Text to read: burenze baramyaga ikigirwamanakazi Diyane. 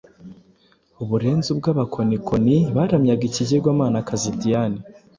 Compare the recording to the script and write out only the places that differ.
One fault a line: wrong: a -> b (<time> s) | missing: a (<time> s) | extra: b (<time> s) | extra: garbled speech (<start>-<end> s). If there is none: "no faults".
extra: ubw'abakonikoni (1.6 s)